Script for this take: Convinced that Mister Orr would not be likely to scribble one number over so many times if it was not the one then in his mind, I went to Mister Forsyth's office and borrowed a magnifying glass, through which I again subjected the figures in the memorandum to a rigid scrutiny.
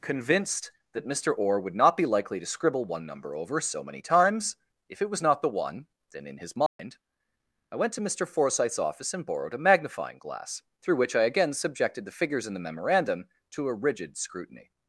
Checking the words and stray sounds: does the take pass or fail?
fail